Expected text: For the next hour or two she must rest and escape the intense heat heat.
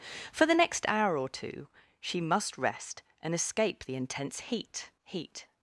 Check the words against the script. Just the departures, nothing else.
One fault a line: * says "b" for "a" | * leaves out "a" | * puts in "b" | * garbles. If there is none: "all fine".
all fine